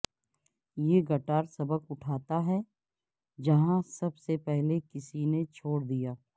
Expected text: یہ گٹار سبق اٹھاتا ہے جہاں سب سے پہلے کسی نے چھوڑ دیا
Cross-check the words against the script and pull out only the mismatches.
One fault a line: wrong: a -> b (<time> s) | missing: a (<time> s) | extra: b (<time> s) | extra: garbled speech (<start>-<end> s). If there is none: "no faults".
no faults